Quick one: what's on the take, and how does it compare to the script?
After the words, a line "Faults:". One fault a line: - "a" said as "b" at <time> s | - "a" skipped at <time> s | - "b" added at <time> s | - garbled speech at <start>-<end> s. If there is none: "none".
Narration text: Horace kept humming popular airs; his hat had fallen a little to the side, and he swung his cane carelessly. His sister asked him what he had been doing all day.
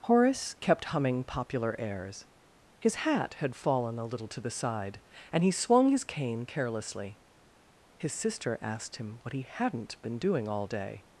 Horace kept humming popular airs; his hat had fallen a little to the side, and he swung his cane carelessly. His sister asked him what he hadn't been doing all day.
Faults:
- "had" said as "hadn't" at 9.4 s